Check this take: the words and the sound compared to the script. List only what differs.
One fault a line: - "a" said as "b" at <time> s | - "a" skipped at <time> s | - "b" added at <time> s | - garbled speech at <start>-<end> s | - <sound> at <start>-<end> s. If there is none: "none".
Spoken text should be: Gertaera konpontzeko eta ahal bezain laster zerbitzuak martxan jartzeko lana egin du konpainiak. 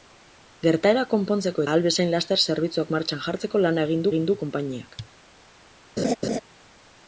- "eta" skipped at 1.6 s
- "egin" added at 4.1 s
- laugh at 6.0-6.4 s